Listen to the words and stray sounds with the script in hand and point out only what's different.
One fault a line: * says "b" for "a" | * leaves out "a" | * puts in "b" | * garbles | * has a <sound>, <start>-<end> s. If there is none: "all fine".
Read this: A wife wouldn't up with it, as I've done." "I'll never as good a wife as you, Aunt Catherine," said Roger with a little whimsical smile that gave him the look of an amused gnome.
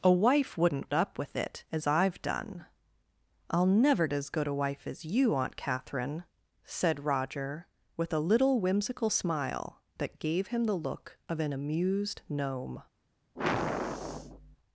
* has a sigh, 13.4-14.6 s